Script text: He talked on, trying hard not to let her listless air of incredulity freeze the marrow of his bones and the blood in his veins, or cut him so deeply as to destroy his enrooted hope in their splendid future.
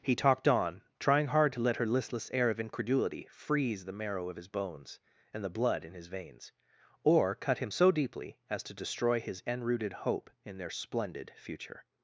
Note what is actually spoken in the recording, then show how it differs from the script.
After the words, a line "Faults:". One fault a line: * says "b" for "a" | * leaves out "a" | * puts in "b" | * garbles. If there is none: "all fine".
He talked on, trying hard to let her listless air of incredulity freeze the marrow of his bones and the blood in his veins, or cut him so deeply as to destroy his enrooted hope in their splendid future.
Faults:
* leaves out "not"